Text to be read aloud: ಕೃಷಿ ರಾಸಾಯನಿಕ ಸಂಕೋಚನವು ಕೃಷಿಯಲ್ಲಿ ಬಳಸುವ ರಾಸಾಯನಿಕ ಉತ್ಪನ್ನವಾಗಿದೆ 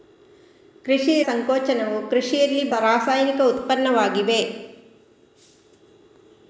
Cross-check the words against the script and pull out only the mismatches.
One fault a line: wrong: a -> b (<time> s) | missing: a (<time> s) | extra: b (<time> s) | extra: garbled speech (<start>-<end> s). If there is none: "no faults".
missing: ರಾಸಾಯನಿಕ (1.2 s)
missing: ಬಳಸುವ (2.7 s)